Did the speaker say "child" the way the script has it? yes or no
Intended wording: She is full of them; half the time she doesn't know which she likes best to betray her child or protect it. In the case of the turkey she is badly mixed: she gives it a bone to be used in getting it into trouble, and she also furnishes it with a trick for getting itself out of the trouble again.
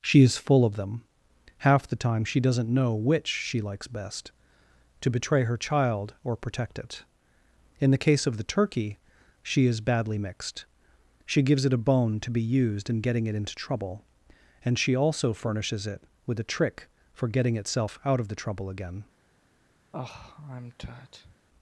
yes